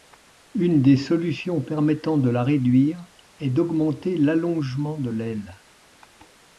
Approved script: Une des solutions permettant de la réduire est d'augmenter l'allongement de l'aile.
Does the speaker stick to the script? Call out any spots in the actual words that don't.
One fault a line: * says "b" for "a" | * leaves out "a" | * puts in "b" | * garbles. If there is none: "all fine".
all fine